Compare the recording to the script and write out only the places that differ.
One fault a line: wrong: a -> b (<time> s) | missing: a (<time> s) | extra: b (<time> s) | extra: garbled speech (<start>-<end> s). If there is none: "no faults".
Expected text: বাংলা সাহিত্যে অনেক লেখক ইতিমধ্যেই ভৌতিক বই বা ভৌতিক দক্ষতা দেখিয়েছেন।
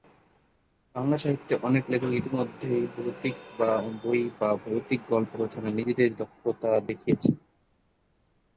extra: গল্প রচনায় নিজেদের (5.1 s)